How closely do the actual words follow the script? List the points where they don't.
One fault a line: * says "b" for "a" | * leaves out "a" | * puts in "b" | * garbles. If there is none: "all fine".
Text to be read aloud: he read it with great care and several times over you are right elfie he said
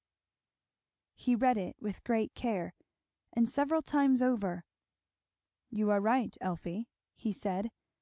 all fine